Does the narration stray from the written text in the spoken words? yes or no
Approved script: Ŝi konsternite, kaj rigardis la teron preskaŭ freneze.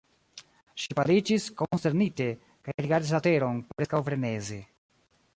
yes